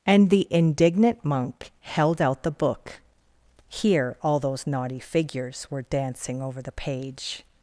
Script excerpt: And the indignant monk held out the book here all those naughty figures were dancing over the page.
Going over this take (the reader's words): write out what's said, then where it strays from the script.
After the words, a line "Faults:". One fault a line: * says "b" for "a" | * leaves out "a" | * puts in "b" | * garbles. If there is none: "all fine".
And the indignant monk held out the book here all those naughty figures were dancing over the page.
Faults:
all fine